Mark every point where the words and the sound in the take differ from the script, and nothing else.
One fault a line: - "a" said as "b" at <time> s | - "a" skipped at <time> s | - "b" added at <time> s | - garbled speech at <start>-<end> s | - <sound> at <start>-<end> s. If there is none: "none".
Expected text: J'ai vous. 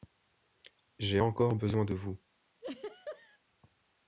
- "encore besoin de" added at 1.2 s
- laugh at 2.6-3.4 s